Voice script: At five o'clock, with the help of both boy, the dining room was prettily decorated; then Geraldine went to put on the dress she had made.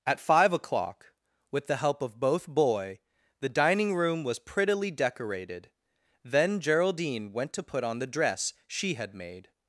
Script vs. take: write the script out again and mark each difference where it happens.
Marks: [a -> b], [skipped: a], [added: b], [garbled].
At five o'clock, with the help of both boy, the dining room was prettily decorated; then Geraldine went to put on the dress she had made.